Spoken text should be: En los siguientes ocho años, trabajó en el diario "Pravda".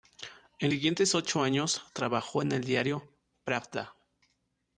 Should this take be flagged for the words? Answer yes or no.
yes